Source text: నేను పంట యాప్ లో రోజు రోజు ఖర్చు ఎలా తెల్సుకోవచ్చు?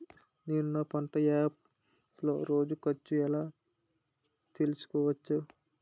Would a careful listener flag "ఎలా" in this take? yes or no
no